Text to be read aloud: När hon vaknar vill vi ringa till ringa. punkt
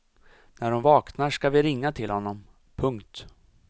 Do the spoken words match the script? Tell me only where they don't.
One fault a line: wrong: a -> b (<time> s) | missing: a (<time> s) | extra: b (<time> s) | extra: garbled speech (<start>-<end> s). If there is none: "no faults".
wrong: vill -> ska (1.3 s)
wrong: ringa -> honom (2.1 s)